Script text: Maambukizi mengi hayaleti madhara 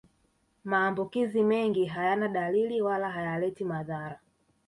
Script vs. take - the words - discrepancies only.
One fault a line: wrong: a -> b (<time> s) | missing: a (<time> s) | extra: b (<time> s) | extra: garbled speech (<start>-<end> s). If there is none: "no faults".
extra: hayana dalili wala (1.9 s)